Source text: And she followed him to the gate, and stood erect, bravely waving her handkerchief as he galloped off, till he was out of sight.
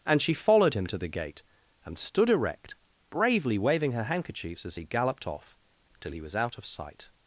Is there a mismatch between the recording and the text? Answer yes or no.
yes